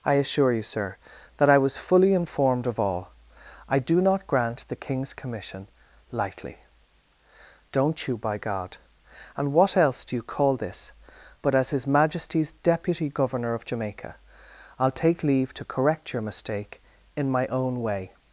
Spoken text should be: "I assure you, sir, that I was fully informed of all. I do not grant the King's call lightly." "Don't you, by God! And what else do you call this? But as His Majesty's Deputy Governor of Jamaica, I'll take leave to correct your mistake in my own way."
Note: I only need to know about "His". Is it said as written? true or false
true